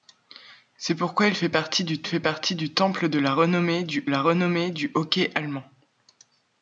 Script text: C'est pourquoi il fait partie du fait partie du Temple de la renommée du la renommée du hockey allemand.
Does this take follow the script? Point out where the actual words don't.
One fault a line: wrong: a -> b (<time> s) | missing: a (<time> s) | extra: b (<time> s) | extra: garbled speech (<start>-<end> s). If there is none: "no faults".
no faults